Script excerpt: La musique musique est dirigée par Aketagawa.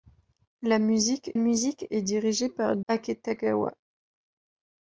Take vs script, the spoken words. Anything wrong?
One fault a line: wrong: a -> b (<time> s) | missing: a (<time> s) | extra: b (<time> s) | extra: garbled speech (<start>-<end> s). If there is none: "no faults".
no faults